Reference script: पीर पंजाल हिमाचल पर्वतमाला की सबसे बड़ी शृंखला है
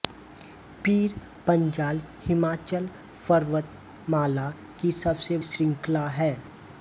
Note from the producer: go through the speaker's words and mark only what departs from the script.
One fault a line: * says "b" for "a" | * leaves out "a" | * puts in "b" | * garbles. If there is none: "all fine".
* leaves out "बड़ी"